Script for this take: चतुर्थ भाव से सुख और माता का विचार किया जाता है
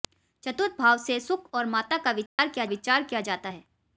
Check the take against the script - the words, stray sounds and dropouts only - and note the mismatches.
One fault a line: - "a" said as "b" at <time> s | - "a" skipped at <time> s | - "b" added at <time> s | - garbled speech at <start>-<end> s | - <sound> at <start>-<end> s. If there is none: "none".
- dropout at 2.3-2.4 s
- "विचार किया" added at 2.6 s